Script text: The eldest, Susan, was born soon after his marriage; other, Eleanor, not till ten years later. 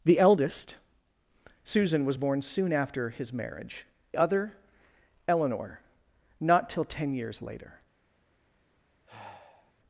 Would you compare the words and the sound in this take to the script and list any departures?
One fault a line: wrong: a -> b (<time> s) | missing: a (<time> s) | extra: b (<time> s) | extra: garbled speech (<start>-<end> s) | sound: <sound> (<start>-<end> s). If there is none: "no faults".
sound: sigh (9.1-9.7 s)